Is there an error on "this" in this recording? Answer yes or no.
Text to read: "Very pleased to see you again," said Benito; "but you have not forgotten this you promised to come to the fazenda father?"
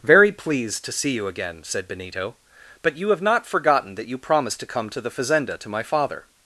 yes